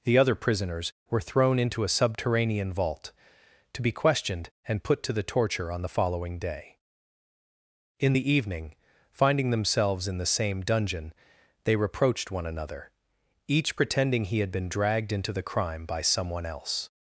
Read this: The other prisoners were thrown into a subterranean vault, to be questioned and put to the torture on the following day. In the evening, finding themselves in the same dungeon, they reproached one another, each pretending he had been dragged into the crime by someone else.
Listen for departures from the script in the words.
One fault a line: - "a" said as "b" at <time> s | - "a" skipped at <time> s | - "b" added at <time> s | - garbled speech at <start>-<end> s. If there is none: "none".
none